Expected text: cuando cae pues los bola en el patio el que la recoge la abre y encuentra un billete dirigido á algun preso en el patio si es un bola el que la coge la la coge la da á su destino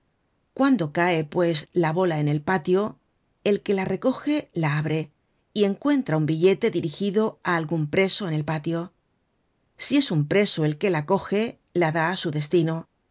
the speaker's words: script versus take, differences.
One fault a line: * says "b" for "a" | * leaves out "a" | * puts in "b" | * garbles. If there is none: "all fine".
* says "la" for "los"
* says "preso" for "bola"
* leaves out "la coge la"